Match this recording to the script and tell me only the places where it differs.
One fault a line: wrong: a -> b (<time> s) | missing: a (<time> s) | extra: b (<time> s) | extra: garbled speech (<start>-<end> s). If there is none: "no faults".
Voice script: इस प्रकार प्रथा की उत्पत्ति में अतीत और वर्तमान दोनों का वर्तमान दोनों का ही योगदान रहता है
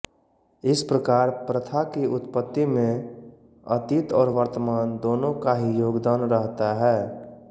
missing: वर्तमान दोनों का (5.5 s)